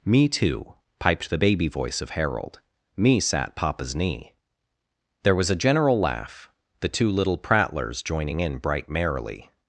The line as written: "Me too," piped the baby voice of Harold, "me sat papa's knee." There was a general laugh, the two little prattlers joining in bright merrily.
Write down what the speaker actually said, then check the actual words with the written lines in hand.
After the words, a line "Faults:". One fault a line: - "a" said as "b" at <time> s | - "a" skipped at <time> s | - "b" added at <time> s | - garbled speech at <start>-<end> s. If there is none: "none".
"Me too," piped the baby voice of Harold, "me sat papa's knee." There was a general laugh, the two little prattlers joining in bright merrily.
Faults:
none